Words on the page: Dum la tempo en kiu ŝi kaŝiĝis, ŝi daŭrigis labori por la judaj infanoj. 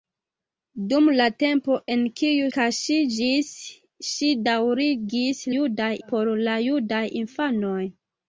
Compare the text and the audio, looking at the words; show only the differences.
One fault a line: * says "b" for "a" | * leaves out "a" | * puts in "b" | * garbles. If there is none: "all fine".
* leaves out "ŝi"
* says "judaj" for "labori"